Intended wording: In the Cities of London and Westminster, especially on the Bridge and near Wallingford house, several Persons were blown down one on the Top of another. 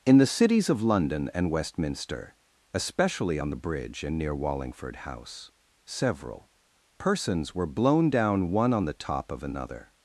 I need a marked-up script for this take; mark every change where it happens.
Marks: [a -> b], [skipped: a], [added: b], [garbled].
In the Cities of London and Westminster, especially on the Bridge and near Wallingford house, several Persons were blown down one on the Top of another.